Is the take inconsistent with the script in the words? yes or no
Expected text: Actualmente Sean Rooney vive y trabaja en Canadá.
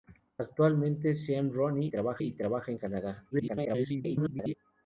yes